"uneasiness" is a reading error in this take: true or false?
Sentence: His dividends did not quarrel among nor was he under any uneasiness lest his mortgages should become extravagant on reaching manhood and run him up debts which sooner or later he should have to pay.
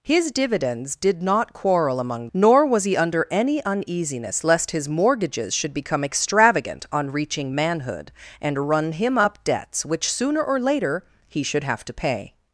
false